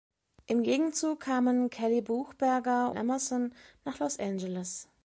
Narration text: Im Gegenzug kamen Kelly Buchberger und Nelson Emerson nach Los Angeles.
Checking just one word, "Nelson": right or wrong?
wrong